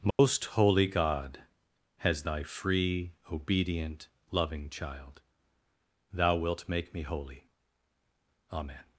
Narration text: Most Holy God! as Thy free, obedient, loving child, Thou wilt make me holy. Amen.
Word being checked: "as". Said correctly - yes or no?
no